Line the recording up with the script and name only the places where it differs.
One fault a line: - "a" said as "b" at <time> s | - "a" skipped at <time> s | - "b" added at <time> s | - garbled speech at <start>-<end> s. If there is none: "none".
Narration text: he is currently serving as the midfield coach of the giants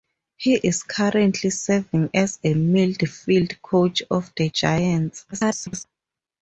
- garbled speech at 5.3-5.9 s